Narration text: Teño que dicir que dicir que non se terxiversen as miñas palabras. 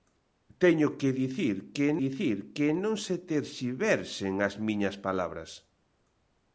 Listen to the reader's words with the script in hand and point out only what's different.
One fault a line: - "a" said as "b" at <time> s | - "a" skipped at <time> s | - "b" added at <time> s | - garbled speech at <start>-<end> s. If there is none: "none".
none